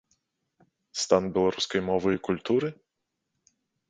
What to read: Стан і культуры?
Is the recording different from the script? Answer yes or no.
yes